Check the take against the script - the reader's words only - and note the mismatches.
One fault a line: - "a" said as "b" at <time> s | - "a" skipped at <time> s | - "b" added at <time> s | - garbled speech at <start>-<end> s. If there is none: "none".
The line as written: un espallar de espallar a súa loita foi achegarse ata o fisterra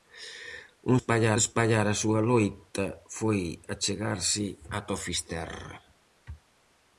none